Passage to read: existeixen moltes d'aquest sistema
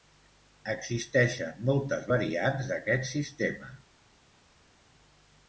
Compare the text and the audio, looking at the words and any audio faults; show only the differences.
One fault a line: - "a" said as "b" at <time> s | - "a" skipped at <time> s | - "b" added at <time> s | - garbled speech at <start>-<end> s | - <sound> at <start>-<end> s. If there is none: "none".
- "variants" added at 2.1 s